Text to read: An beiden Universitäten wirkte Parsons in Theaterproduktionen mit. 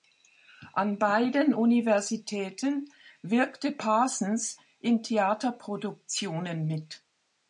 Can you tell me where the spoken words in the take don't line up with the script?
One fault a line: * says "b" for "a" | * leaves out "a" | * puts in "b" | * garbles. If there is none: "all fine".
all fine